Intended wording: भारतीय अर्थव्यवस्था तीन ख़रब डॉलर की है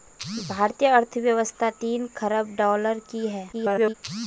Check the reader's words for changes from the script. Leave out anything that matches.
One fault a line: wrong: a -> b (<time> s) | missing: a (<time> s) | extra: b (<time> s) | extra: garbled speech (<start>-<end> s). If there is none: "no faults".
extra: garbled speech (3.5-3.9 s)